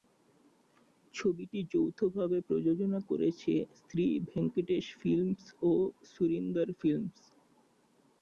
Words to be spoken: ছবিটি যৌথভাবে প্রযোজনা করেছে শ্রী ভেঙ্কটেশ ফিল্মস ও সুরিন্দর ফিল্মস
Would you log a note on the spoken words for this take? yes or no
no